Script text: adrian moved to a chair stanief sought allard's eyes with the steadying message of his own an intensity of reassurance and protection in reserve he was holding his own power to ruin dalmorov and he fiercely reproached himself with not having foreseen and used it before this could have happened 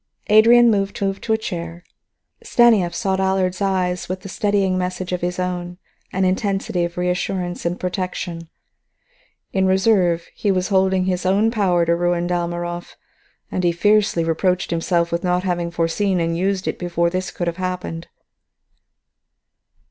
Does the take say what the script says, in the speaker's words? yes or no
no